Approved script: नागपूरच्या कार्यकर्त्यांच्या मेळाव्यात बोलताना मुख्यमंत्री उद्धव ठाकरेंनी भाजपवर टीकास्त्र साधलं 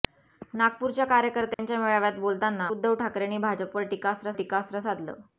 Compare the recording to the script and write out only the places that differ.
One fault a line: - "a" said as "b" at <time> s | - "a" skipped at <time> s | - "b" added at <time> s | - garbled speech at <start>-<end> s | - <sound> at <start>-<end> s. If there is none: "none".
- dropout at 1.5-1.6 s
- "मुख्यमंत्री" skipped at 2.7 s
- "टीकास्त्र" added at 4.3 s